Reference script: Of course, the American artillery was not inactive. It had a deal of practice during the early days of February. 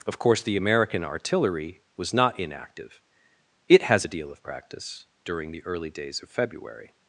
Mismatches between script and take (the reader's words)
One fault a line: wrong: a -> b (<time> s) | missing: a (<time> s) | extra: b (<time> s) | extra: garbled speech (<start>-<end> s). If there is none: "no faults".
wrong: had -> has (3.8 s)